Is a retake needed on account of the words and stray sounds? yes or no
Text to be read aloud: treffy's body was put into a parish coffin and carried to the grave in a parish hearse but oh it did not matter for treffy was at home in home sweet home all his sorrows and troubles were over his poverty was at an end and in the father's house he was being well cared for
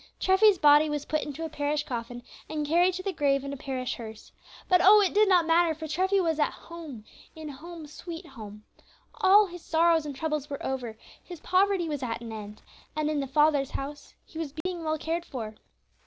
yes